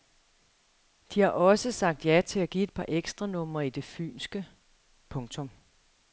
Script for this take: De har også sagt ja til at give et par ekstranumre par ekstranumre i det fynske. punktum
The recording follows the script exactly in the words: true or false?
false